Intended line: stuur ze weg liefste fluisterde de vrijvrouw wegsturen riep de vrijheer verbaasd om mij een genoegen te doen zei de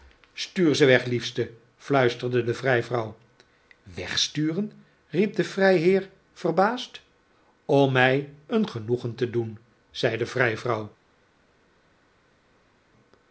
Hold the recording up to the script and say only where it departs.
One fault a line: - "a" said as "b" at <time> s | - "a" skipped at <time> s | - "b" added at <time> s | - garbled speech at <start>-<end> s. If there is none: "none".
none